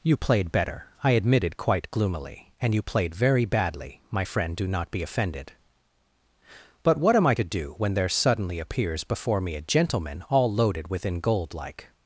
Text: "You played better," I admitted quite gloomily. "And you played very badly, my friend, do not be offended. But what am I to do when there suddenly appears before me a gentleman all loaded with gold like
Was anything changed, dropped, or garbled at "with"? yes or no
yes